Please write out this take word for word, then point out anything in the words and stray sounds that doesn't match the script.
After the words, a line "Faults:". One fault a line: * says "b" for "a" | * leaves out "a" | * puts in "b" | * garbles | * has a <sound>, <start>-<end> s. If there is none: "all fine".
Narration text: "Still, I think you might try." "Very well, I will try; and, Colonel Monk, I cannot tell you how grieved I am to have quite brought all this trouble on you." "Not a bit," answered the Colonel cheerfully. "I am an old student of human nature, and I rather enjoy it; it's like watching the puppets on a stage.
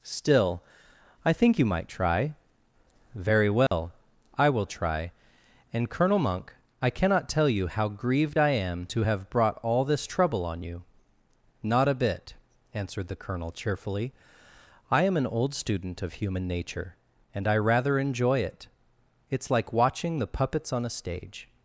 "Still, I think you might try." "Very well, I will try; and, Colonel Monk, I cannot tell you how grieved I am to have brought all this trouble on you." "Not a bit," answered the Colonel cheerfully. "I am an old student of human nature, and I rather enjoy it; it's like watching the puppets on a stage.
Faults:
* has a dropout, 3.7-3.7 s
* leaves out "quite"